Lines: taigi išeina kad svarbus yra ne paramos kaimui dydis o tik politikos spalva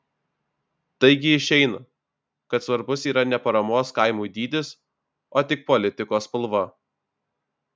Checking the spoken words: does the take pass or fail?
pass